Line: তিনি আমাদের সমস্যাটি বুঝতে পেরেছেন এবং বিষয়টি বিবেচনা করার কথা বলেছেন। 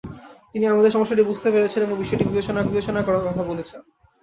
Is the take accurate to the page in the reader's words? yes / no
no